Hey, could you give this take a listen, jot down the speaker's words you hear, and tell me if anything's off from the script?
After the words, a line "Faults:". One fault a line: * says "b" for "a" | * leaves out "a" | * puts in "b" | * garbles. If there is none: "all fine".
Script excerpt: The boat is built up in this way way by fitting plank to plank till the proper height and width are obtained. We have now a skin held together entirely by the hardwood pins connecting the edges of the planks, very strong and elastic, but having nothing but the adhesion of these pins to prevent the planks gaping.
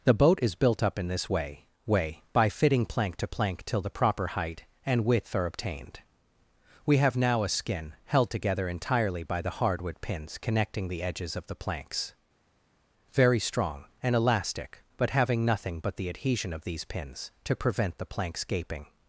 The boat is built up in this way way by fitting plank to plank till the proper height and width are obtained. We have now a skin held together entirely by the hardwood pins connecting the edges of the planks, very strong and elastic, but having nothing but the adhesion of these pins to prevent the planks gaping.
Faults:
all fine